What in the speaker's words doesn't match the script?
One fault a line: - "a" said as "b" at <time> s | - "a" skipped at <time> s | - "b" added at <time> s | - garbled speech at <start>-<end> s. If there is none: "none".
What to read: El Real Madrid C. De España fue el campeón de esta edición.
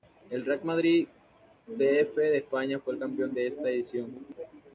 - "F" added at 2.0 s